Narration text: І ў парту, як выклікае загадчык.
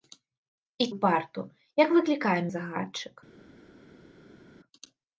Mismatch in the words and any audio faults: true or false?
false